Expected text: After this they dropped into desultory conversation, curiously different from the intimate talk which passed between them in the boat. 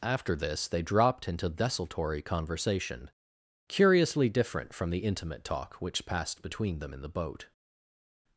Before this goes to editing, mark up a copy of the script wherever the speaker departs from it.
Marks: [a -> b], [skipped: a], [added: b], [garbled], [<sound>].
After this they dropped into desultory conversation, curiously different from the intimate talk which passed between them in the boat.